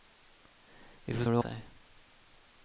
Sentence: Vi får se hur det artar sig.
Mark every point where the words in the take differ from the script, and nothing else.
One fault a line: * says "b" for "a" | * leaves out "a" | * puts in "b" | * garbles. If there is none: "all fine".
* leaves out "se"
* leaves out "artar"